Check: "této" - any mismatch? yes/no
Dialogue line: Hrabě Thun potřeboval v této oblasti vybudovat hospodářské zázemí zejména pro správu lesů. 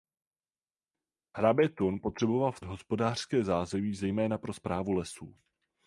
yes